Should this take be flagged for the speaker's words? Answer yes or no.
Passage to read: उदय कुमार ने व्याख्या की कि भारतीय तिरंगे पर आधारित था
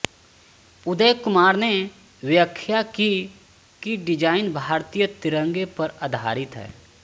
yes